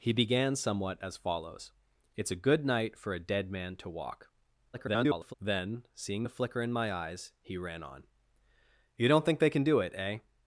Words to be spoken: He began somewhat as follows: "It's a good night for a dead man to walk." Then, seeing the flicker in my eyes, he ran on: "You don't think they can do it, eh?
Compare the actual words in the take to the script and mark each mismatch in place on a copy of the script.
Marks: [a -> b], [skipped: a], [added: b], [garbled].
He began somewhat as follows: "It's a good night for a dead man to walk." [garbled] Then, seeing the flicker in my eyes, he ran on: "You don't think they can do it, eh?